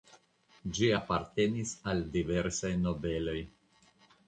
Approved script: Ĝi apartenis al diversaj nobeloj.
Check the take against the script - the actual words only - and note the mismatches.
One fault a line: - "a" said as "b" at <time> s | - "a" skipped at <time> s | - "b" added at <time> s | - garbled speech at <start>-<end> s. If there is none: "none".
none